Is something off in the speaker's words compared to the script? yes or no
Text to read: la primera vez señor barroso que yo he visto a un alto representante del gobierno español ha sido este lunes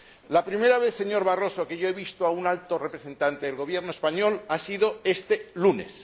no